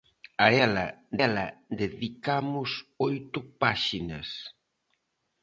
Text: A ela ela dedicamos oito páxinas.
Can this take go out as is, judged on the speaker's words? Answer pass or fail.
pass